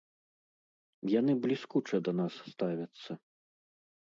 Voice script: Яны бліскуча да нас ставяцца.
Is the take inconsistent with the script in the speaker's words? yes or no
no